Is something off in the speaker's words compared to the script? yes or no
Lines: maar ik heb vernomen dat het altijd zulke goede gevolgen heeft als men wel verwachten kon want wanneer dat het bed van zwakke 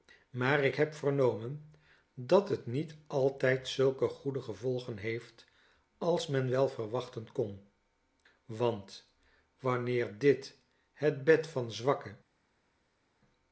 yes